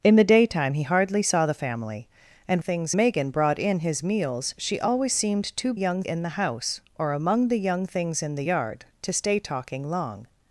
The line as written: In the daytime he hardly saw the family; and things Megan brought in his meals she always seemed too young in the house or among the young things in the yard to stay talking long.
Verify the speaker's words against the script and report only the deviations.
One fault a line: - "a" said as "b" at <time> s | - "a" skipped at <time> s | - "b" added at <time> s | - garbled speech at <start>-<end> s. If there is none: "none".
none